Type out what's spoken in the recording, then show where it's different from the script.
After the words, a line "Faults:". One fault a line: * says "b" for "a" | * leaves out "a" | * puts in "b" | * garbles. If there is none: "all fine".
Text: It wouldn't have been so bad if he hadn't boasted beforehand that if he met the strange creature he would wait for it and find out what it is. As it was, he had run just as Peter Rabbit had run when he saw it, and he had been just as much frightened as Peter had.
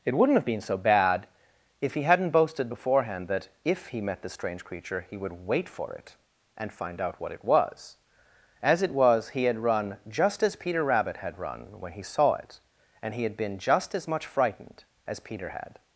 It wouldn't have been so bad if he hadn't boasted beforehand that if he met the strange creature he would wait for it and find out what it was. As it was, he had run just as Peter Rabbit had run when he saw it, and he had been just as much frightened as Peter had.
Faults:
* says "was" for "is"